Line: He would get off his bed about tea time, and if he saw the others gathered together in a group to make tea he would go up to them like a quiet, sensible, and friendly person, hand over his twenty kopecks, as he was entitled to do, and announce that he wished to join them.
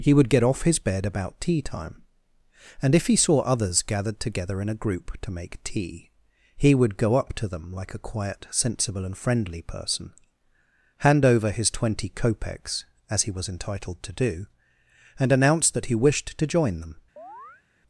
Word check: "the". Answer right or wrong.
wrong